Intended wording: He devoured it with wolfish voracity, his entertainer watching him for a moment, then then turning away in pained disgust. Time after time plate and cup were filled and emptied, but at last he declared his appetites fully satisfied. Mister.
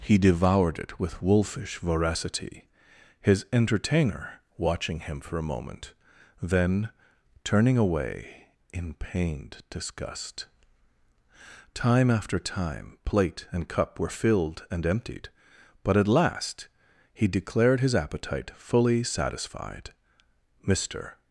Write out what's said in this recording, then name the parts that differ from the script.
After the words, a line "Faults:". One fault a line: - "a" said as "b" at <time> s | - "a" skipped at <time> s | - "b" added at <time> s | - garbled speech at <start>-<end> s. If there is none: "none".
He devoured it with wolfish voracity, his entertainer watching him for a moment, then turning away in pained disgust. Time after time plate and cup were filled and emptied, but at last he declared his appetite fully satisfied. Mister.
Faults:
- "then" skipped at 6.9 s
- "appetites" said as "appetite" at 17.9 s